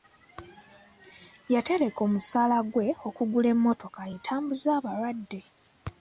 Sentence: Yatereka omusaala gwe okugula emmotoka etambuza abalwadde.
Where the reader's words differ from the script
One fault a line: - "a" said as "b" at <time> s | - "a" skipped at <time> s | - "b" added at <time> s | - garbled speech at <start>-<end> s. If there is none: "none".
none